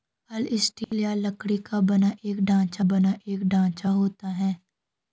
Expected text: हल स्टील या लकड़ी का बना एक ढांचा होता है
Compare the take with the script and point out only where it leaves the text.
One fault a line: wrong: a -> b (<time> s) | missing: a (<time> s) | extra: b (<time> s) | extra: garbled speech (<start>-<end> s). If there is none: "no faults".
extra: बना एक ढांचा (2.8 s)